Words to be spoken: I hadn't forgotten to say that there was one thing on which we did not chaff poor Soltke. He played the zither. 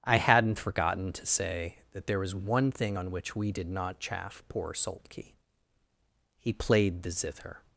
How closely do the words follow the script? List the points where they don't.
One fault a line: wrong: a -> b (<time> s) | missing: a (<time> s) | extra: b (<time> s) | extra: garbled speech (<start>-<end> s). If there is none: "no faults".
no faults